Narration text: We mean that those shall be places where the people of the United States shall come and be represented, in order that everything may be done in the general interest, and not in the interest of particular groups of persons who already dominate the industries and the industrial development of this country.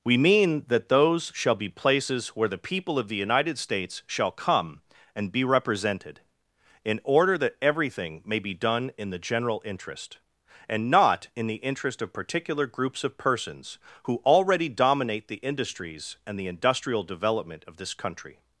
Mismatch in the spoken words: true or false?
false